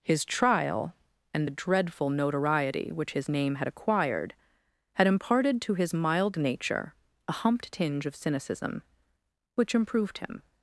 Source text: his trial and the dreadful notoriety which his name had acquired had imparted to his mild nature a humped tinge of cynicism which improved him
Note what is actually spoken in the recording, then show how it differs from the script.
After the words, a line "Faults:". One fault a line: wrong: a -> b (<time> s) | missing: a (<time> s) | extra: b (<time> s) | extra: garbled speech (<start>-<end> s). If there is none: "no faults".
his trial and the dreadful notoriety which his name had acquired had imparted to his mild nature a humped tinge of cynicism which improved him
Faults:
no faults